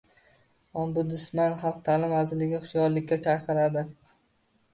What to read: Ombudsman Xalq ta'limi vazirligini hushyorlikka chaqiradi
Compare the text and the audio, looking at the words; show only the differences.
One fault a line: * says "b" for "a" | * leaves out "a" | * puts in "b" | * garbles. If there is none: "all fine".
all fine